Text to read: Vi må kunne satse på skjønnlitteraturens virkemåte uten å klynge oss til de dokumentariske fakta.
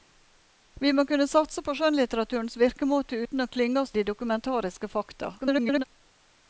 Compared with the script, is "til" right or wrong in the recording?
wrong